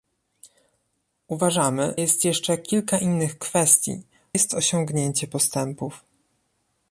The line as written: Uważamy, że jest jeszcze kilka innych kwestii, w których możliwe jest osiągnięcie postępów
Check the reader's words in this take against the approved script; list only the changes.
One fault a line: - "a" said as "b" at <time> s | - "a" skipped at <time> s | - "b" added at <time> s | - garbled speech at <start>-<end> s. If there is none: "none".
- "że" skipped at 2.0 s
- "w których możliwe" skipped at 4.0 s